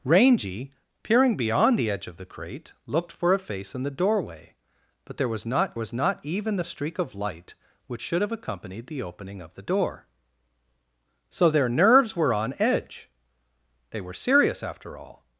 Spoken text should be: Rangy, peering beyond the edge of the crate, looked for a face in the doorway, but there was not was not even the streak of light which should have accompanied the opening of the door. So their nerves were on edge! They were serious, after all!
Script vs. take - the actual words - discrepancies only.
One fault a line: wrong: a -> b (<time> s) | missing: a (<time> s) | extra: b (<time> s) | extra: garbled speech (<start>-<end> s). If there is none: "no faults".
no faults